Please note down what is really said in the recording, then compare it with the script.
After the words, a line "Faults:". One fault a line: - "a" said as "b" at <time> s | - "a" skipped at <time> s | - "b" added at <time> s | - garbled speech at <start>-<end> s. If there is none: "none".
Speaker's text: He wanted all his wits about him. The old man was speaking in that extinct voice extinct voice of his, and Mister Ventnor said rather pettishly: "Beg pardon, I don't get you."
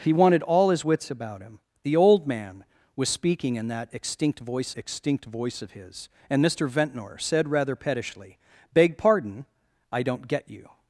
He wanted all his wits about him. The old man was speaking in that extinct voice extinct voice of his, and Mister Ventnor said rather pettishly: "Beg pardon, I don't get you."
Faults:
none